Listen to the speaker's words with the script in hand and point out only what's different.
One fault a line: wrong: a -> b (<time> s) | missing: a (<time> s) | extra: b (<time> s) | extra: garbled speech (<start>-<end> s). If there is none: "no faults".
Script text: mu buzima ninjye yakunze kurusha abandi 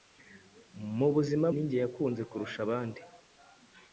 no faults